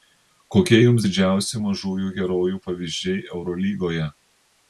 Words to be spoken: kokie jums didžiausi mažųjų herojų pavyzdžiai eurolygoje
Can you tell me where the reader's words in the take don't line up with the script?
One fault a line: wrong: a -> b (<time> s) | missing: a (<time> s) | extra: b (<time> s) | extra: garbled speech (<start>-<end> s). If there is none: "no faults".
no faults